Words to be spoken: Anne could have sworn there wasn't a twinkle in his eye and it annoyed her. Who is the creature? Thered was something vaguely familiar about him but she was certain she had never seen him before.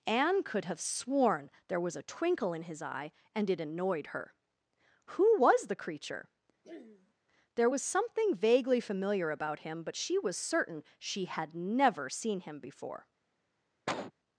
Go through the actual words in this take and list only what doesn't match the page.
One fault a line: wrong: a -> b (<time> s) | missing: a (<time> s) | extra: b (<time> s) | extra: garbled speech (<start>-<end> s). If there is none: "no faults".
wrong: wasn't -> was (1.8 s)
wrong: is -> was (5.4 s)
wrong: Thered -> There (7.6 s)